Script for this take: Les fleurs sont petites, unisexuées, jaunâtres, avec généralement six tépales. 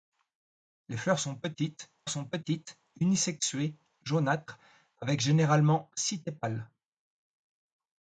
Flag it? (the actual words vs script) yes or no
yes